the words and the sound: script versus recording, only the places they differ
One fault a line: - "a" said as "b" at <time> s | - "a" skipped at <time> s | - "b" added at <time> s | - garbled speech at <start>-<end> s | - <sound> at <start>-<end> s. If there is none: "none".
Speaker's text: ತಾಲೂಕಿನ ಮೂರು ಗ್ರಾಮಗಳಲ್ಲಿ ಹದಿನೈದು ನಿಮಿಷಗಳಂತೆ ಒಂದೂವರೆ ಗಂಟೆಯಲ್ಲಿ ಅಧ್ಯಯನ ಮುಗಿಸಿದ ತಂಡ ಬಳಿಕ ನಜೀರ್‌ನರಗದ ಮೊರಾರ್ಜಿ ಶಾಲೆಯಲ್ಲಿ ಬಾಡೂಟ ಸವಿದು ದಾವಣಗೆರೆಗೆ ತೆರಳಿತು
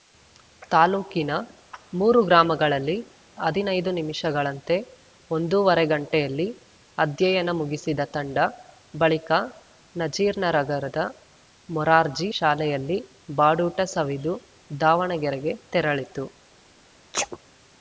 - sneeze at 17.1-17.4 s